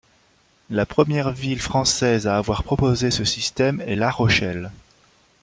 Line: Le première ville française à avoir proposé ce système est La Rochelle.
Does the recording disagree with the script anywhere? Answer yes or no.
yes